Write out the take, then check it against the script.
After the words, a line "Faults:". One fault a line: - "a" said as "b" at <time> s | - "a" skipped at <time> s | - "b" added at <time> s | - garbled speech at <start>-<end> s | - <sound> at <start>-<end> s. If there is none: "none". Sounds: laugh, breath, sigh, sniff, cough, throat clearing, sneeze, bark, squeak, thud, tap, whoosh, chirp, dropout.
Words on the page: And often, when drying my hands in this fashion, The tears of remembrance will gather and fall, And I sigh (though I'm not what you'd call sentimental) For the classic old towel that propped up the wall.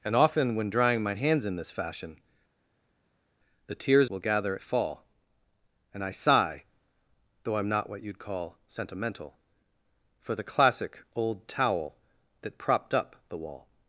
And often, when drying my hands in this fashion, The tears will gather fall, And I sigh (though I'm not what you'd call sentimental) For the classic old towel that propped up the wall.
Faults:
- "of remembrance" skipped at 4.1 s
- "and" skipped at 4.6 s